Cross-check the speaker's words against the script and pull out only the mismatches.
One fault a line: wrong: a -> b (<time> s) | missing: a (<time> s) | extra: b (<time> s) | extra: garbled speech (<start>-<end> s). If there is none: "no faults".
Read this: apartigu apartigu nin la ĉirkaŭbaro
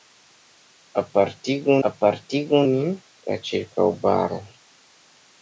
no faults